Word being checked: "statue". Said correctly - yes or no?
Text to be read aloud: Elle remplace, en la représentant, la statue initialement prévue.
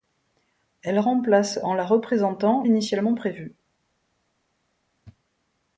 no